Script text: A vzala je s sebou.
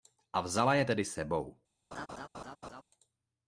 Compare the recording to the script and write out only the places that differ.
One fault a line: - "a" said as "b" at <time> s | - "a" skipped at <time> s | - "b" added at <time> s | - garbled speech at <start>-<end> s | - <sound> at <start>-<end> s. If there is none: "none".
- "tedy" added at 0.8 s
- laugh at 1.9-2.8 s